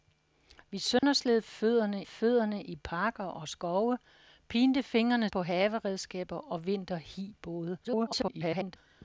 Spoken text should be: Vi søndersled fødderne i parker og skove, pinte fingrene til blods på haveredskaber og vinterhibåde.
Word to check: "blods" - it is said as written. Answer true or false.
false